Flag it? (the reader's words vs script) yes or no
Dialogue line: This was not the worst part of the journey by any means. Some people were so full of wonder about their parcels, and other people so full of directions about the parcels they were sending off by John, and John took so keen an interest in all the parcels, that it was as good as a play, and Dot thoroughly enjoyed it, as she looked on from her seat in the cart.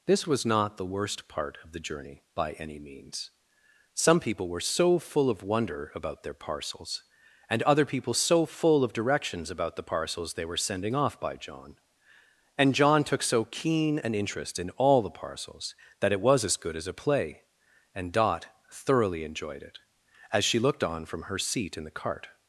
no